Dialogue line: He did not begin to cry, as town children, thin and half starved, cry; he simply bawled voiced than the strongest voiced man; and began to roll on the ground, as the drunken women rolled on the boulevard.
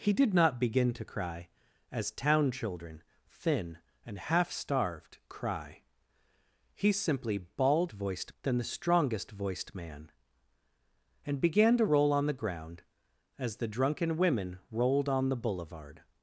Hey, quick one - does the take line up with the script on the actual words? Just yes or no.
yes